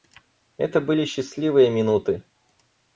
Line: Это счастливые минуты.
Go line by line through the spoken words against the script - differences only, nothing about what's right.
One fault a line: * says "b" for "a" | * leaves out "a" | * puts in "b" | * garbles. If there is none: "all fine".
* puts in "были"